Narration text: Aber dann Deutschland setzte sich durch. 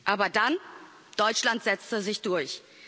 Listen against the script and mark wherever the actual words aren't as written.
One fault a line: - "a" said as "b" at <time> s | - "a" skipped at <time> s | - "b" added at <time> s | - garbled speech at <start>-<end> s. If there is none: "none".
none